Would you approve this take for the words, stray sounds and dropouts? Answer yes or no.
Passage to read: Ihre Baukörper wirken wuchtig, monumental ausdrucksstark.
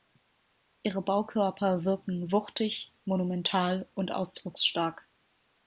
no